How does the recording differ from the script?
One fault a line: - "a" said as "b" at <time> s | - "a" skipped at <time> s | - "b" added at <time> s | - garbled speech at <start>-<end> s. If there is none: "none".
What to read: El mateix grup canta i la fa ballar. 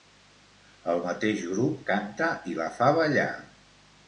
none